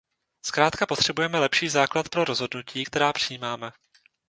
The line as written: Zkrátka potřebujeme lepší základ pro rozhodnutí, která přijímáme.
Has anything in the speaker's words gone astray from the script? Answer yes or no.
no